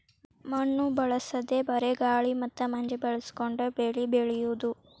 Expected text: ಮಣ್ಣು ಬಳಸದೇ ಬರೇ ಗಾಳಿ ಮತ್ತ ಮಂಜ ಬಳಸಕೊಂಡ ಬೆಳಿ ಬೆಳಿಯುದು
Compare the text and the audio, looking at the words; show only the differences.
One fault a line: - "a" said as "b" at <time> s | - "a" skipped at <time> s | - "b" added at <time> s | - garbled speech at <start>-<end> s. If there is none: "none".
none